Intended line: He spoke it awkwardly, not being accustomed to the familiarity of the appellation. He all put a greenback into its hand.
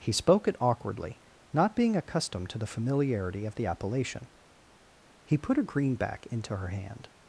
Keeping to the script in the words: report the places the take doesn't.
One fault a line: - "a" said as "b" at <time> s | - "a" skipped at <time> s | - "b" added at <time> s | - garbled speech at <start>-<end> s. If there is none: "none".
- "all" skipped at 5.4 s
- "its" said as "her" at 6.6 s